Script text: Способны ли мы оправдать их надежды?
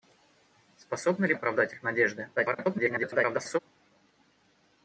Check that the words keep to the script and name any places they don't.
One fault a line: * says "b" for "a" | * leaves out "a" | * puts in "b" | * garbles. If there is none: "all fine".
* leaves out "мы"
* garbles